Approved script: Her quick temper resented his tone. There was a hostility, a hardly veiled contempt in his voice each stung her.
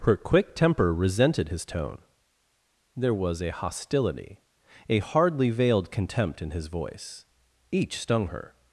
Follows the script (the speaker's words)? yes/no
yes